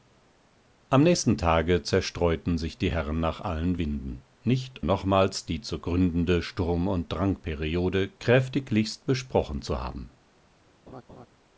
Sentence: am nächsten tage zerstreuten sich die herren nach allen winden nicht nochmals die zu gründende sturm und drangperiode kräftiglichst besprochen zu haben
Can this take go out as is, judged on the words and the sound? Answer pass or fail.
fail